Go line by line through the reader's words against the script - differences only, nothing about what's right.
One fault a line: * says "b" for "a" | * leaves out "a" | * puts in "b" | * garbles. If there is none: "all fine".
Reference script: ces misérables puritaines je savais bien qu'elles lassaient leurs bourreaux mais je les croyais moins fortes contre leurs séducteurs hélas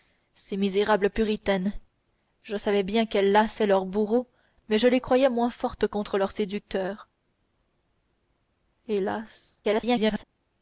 * garbles